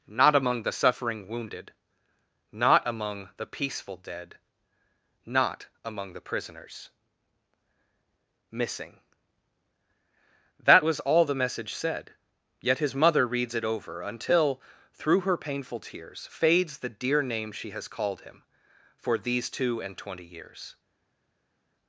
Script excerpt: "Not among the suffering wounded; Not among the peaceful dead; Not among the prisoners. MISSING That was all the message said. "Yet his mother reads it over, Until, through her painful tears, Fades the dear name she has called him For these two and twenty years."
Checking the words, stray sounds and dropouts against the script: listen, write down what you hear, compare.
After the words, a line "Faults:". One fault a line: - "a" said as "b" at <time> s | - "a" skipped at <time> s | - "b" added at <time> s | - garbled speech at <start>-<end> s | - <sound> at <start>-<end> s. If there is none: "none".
"Not among the suffering wounded; Not among the peaceful dead; Not among the prisoners. MISSING That was all the message said. "Yet his mother reads it over, Until, through her painful tears, Fades the dear name she has called him For these two and twenty years."
Faults:
none